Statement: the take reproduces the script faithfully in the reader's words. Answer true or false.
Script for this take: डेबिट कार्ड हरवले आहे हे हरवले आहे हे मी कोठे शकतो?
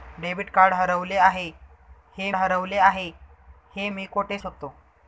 true